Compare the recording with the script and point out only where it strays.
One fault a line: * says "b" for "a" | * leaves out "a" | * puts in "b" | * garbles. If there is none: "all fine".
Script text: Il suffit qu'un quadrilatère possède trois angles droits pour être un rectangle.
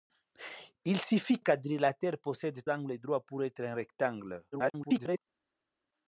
* leaves out "qu'un"
* leaves out "trois"
* garbles